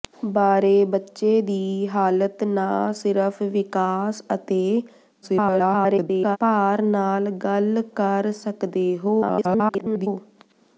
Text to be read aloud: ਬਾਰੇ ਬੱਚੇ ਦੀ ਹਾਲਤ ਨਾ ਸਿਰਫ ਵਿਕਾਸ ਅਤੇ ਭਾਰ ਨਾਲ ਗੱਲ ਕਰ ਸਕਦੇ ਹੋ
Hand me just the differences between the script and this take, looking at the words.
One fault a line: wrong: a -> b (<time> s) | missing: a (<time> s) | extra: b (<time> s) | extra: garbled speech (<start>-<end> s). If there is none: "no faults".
extra: garbled speech (5.2-6.4 s)
extra: garbled speech (9.2-10.1 s)